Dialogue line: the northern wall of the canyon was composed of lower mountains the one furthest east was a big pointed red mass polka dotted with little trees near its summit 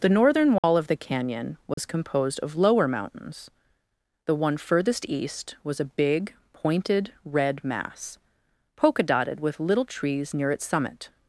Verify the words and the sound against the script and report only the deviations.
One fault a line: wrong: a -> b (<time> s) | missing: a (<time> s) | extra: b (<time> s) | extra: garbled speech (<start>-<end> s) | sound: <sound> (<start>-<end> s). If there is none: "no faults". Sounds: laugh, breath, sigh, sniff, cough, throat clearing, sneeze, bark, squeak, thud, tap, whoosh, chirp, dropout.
sound: dropout (0.6-0.6 s)
sound: dropout (1.7-1.8 s)